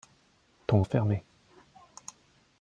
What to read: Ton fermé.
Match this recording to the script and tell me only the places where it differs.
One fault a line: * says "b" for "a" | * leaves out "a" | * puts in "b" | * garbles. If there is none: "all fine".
all fine